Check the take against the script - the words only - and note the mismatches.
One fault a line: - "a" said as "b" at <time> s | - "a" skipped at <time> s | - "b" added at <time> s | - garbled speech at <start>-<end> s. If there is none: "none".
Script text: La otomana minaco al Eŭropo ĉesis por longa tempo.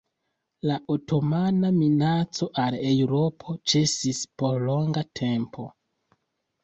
none